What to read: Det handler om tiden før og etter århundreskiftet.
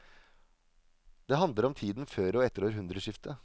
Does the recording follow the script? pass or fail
pass